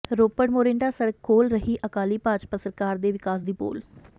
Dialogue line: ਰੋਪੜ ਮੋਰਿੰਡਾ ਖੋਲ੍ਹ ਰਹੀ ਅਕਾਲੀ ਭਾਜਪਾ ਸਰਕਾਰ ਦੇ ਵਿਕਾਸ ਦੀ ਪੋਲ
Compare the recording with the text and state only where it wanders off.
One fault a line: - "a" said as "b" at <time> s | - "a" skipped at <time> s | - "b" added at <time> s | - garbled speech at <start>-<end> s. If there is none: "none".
- "ਸੜਕ" added at 0.9 s